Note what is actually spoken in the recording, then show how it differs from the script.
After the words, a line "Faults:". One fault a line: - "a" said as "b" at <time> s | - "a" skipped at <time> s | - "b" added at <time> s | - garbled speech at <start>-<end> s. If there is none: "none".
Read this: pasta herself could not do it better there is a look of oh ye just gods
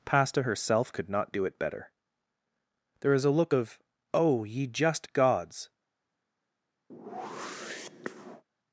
pasta herself could not do it better there is a look of oh ye just gods
Faults:
none